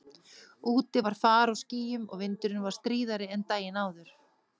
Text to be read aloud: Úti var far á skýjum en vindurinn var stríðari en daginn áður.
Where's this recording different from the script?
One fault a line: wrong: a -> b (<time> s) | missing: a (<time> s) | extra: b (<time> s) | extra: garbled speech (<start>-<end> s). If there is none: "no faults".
wrong: en -> og (2.1 s)